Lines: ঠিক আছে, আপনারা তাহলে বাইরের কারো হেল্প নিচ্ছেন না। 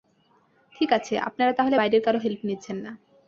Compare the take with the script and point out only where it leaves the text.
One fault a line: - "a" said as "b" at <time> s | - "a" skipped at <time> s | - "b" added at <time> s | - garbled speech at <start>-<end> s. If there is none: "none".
none